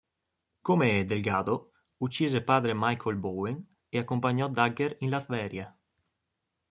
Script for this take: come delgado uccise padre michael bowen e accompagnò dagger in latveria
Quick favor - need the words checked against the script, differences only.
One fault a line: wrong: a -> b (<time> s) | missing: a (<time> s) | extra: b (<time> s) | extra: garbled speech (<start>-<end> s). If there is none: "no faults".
no faults